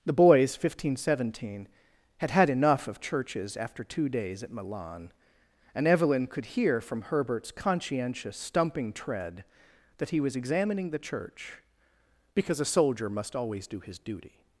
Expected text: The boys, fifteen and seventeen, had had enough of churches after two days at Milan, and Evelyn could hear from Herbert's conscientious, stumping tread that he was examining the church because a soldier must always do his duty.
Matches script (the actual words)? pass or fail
fail